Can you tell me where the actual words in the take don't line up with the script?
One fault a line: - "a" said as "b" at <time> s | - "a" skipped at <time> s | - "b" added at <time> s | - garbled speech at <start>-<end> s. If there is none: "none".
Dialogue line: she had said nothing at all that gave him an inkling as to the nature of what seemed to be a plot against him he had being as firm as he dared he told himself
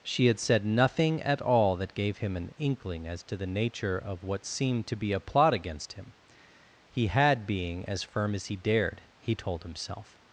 none